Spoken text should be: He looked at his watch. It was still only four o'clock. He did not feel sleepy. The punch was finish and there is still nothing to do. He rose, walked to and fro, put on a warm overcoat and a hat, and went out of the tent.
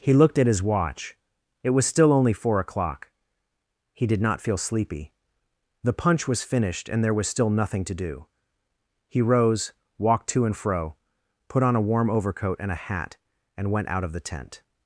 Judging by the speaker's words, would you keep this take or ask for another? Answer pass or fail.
fail